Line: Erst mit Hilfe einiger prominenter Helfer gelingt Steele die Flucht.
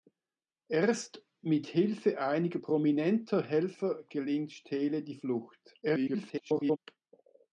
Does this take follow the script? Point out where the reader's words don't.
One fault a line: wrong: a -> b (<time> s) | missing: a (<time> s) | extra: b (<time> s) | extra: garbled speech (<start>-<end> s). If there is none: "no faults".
extra: garbled speech (5.8-6.8 s)